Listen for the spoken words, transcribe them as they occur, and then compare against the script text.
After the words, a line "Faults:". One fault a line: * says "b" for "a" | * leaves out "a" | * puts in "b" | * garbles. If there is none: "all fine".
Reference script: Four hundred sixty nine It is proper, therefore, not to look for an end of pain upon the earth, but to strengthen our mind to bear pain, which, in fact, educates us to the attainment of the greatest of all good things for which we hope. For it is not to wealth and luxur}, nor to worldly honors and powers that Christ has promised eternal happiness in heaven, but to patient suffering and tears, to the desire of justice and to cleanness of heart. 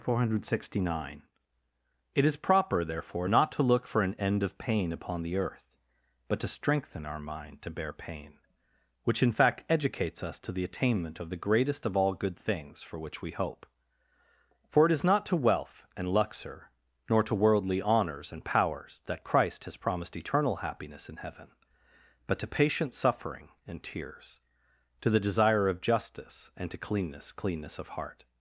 Four hundred sixty nine It is proper, therefore, not to look for an end of pain upon the earth, but to strengthen our mind to bear pain, which, in fact, educates us to the attainment of the greatest of all good things for which we hope. For it is not to wealth and luxur}, nor to worldly honors and powers that Christ has promised eternal happiness in heaven, but to patient suffering and tears, to the desire of justice and to cleanness cleanness of heart.
Faults:
* puts in "cleanness"